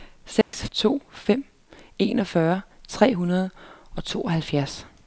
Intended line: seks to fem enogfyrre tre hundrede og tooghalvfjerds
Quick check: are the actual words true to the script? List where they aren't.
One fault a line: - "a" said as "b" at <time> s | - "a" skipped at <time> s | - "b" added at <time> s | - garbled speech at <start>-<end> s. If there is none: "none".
none